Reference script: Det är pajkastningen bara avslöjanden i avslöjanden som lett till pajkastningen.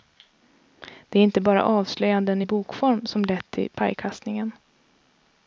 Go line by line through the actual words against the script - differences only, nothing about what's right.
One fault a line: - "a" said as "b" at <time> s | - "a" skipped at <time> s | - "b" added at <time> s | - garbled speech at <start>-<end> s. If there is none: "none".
- "pajkastningen" said as "inte" at 1.2 s
- "avslöjanden" said as "bokform" at 2.4 s